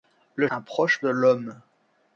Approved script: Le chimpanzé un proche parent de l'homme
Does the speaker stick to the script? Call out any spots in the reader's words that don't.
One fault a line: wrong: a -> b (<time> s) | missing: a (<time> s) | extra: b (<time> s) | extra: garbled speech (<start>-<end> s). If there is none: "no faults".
missing: chimpanzé (0.5 s)
missing: parent (1.0 s)